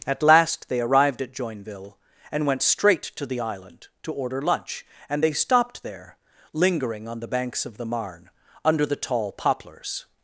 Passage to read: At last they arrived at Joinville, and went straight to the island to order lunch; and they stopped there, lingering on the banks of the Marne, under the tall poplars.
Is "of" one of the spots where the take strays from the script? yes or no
no